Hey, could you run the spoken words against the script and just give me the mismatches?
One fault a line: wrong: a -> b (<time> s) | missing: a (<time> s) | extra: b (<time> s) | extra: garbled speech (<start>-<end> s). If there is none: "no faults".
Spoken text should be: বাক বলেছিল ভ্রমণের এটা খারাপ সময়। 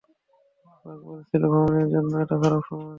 extra: জন্য (1.9 s)